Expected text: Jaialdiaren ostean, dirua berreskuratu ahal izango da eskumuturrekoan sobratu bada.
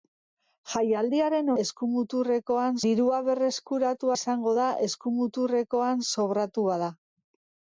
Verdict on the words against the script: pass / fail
fail